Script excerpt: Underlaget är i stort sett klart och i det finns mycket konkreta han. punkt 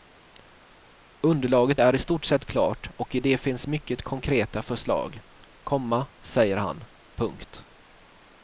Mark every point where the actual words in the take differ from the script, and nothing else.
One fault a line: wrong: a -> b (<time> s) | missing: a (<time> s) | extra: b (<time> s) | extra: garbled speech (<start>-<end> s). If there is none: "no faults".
extra: förslag komma säger (4.6 s)